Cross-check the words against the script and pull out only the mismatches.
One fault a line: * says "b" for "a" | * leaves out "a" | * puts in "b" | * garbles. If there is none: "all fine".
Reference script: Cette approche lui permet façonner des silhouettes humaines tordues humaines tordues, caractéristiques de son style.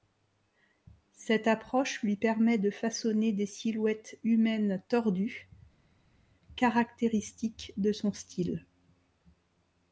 * puts in "de"
* leaves out "humaines tordues"